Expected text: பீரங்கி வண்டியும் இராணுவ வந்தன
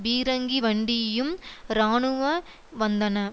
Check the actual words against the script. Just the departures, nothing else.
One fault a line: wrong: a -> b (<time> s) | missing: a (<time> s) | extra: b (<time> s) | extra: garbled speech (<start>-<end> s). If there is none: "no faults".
no faults